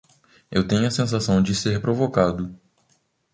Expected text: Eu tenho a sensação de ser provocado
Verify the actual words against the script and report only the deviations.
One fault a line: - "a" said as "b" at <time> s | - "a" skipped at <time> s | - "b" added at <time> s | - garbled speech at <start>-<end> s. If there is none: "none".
none